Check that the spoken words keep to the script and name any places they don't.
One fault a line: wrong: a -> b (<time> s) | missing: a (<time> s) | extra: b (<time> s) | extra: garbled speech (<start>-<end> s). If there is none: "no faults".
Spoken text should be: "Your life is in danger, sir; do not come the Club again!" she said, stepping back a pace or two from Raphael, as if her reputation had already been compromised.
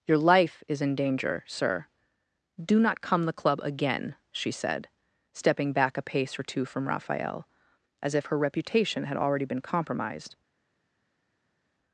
no faults